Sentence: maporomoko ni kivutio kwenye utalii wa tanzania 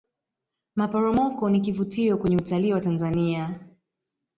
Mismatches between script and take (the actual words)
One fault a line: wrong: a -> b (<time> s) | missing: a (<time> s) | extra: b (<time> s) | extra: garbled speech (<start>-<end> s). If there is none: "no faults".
no faults